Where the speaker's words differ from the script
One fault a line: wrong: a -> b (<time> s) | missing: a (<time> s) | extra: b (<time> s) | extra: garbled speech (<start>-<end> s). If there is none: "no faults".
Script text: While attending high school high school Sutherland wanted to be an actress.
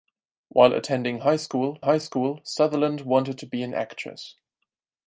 no faults